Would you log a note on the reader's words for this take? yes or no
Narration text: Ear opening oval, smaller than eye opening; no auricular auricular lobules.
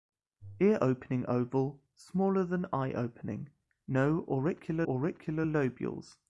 no